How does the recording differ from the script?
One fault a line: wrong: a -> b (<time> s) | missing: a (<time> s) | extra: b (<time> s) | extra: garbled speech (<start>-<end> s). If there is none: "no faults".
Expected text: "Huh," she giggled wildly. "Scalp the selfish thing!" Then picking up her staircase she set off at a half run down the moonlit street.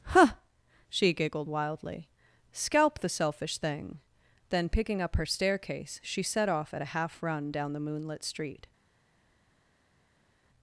no faults